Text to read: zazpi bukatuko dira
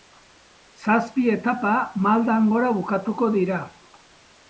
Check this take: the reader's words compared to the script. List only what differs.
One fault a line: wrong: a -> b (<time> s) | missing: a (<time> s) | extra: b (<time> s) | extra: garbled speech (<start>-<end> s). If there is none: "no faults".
extra: etapa maldan gora (1.3 s)